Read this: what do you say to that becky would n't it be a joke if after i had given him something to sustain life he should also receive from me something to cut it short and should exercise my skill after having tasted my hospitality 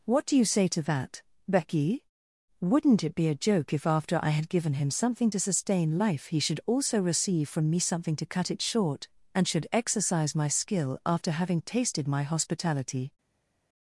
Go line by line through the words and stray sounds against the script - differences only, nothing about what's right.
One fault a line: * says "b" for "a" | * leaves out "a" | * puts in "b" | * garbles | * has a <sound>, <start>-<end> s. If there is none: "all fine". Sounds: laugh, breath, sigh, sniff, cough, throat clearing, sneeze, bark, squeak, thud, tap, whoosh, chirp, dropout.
all fine